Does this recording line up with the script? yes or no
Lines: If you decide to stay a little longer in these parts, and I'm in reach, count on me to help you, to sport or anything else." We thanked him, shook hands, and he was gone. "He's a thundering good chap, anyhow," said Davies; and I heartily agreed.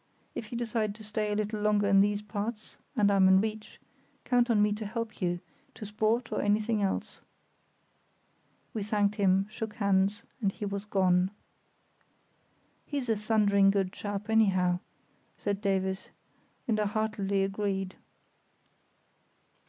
yes